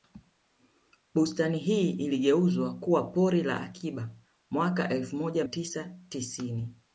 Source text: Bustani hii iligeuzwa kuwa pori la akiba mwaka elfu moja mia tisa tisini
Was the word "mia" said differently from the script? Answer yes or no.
yes